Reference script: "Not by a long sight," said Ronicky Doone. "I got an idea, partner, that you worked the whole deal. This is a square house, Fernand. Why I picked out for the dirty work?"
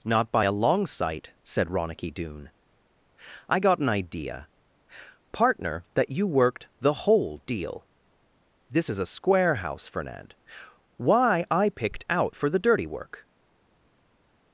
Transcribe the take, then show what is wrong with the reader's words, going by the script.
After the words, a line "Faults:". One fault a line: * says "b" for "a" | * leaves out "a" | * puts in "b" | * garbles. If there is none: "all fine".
"Not by a long sight," said Ronicky Doone. "I got an idea, partner, that you worked the whole deal. This is a square house, Fernand. Why I picked out for the dirty work?"
Faults:
all fine